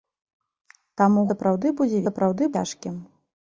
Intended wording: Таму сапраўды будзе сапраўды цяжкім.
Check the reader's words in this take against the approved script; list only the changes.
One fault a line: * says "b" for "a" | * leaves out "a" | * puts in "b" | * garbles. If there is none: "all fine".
all fine